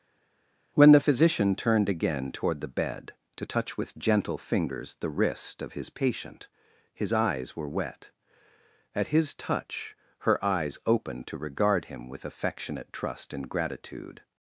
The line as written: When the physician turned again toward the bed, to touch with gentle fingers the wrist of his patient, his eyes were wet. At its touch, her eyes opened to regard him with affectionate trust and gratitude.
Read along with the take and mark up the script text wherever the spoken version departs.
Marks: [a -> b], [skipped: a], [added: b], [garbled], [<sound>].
When the physician turned again toward the bed, to touch with gentle fingers the wrist of his patient, his eyes were wet. At [its -> his] touch, her eyes opened to regard him with affectionate trust and gratitude.